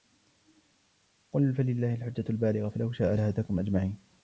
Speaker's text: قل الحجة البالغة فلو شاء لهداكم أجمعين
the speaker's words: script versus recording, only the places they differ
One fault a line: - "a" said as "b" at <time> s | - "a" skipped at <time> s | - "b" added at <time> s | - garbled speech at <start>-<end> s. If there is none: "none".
- "فلله" added at 1.5 s